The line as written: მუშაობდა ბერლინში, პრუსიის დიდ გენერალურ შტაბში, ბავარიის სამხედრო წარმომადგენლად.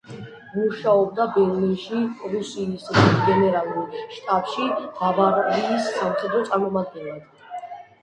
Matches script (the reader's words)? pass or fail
pass